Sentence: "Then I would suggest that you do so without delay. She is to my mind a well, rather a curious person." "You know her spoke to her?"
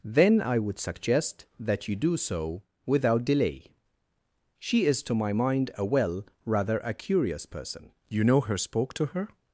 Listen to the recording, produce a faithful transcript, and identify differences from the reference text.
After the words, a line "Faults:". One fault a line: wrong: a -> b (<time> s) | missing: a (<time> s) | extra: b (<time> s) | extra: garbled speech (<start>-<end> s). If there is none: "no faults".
"Then I would suggest that you do so without delay. She is to my mind a well, rather a curious person." "You know her spoke to her?"
Faults:
no faults